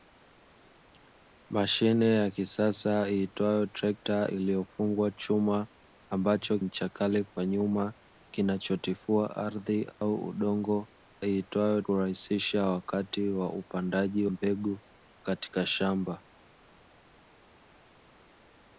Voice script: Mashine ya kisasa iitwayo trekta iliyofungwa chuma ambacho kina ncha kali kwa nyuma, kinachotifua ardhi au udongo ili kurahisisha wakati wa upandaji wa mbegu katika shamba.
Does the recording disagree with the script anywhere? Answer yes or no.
yes